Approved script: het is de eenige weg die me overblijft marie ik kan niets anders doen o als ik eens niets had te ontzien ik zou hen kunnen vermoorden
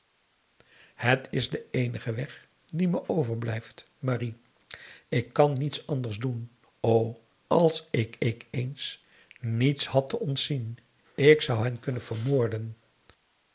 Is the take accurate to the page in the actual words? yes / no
no